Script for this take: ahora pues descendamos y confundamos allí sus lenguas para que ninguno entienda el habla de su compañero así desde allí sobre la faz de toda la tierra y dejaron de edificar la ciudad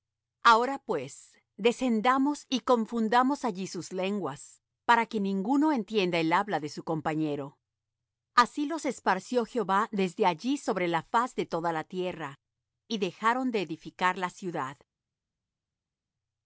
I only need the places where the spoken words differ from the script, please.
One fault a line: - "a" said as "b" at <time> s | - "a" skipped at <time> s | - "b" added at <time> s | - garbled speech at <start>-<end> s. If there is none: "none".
- "los esparció jehová" added at 8.7 s